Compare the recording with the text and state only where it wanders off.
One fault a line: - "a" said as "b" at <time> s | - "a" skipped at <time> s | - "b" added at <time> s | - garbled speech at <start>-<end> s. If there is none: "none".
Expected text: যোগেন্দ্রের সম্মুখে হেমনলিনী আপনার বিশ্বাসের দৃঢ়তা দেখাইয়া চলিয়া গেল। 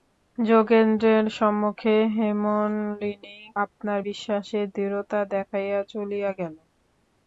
none